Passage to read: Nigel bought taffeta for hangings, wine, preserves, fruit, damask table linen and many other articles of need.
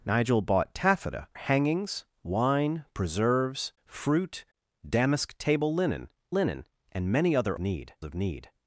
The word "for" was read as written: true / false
false